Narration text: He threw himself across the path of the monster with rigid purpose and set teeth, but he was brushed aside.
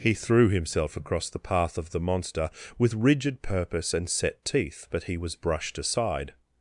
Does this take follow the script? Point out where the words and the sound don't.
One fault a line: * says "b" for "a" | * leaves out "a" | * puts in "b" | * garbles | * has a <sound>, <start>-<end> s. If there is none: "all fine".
all fine